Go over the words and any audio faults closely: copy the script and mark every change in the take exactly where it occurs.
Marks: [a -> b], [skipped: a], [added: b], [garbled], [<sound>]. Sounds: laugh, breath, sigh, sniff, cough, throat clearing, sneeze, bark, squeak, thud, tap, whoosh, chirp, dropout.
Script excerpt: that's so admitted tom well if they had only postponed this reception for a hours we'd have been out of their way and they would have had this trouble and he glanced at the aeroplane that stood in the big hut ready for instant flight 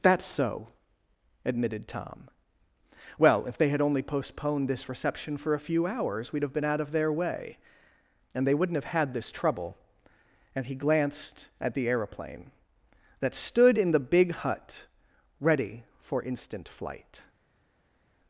that's so admitted tom well if they had only postponed this reception for a [added: few] hours we'd have been out of their way and they [would -> wouldn't] have had this trouble and he glanced at the aeroplane that stood in the big hut ready for instant flight